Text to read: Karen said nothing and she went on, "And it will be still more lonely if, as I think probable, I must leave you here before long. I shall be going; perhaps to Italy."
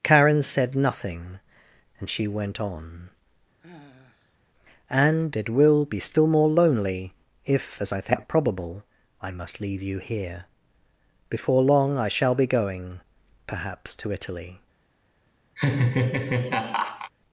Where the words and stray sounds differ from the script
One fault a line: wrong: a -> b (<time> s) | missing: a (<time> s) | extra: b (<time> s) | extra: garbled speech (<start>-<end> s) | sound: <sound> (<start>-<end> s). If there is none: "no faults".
sound: sigh (3.6-4.4 s)
sound: laugh (15.6-17.1 s)